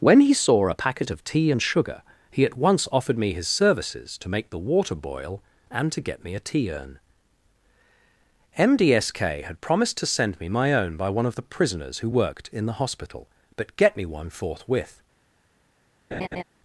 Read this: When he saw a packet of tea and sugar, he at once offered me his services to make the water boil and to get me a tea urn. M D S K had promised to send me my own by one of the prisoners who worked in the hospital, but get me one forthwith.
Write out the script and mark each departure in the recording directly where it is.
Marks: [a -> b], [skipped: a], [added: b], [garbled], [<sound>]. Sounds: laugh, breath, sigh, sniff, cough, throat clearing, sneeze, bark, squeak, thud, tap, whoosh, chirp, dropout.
When he saw a packet of tea and sugar, he at once offered me his services to make the water boil and to get me a tea urn. M D S K had promised to send me my own by one of the prisoners who worked in the hospital, but get me one forthwith. [laugh]